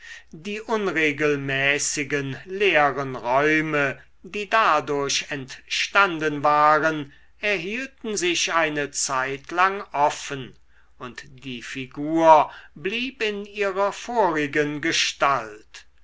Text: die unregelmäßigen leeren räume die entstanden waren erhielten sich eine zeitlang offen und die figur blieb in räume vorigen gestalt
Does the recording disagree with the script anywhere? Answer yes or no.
yes